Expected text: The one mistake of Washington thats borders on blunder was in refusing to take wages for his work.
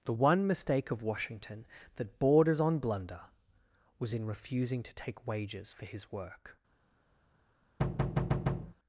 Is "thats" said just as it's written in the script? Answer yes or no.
no